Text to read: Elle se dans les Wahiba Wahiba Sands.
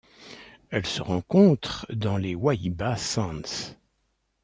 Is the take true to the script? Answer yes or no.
no